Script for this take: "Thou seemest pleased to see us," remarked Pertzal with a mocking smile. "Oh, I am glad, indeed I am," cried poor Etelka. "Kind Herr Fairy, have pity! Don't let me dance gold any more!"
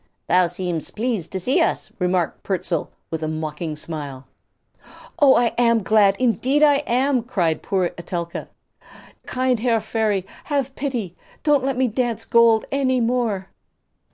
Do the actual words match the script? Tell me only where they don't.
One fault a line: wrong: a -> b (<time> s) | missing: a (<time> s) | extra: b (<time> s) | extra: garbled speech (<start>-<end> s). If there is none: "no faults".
no faults